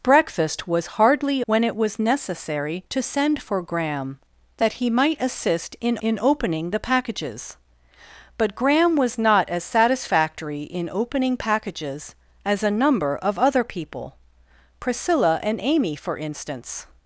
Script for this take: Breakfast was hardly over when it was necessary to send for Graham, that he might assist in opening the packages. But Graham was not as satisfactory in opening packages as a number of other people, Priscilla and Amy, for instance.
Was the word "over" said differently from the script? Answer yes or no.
yes